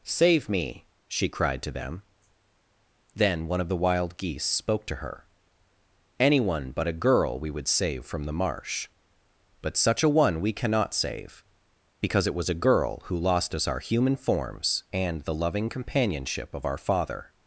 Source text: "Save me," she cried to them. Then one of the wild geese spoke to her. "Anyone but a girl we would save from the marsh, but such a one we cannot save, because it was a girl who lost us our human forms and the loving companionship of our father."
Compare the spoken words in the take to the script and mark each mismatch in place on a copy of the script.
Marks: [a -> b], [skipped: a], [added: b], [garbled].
"Save me," she cried to them. Then one of the wild geese spoke to her. "Anyone but a girl we would save from the marsh, but such a one we cannot save, because it was a girl who lost us our human forms and the loving companionship of our father."